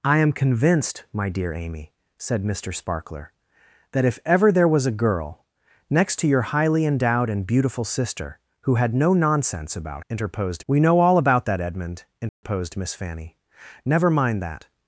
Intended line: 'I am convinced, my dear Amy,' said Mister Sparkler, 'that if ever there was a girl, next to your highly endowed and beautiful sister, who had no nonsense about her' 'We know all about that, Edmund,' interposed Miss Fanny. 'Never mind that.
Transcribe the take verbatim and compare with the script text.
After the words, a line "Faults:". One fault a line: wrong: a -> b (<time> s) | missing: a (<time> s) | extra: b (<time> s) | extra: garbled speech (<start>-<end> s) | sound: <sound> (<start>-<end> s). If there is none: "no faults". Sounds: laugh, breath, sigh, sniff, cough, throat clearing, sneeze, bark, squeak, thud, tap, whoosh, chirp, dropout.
'I am convinced, my dear Amy,' said Mister Sparkler, 'that if ever there was a girl, next to your highly endowed and beautiful sister, who had no nonsense about interposed' 'We know all about that, Edmund,' interposed Miss Fanny. 'Never mind that.
Faults:
wrong: her -> interposed (10.1 s)
sound: dropout (12.3-12.4 s)